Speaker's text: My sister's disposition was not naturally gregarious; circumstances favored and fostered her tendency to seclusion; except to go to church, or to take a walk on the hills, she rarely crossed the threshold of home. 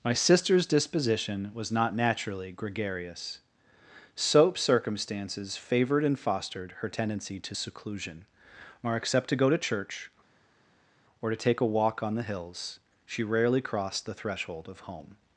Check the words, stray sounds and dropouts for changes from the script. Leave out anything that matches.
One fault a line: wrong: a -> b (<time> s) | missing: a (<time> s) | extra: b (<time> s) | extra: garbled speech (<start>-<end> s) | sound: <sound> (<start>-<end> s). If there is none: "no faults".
extra: soap (4.2 s)
extra: or (8.8 s)